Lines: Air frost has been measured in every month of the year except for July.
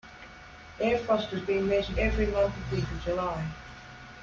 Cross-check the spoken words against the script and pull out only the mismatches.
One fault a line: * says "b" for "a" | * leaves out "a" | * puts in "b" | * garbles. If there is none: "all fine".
* leaves out "in"
* leaves out "year except"